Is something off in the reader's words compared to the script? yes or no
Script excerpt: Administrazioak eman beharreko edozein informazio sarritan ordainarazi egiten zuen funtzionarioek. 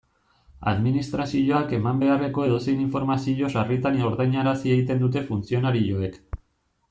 yes